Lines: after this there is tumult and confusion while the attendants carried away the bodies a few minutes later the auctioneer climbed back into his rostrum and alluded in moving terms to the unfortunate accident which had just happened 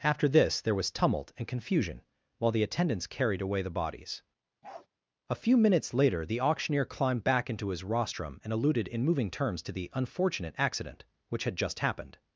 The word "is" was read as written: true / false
false